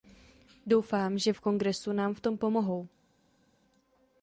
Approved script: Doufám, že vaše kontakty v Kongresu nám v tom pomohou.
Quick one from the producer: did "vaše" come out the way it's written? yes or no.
no